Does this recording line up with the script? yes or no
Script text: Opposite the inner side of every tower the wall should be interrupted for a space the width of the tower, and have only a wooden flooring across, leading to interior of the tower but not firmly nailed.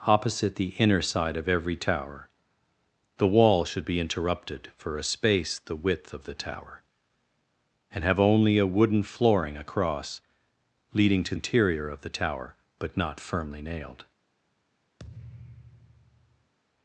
yes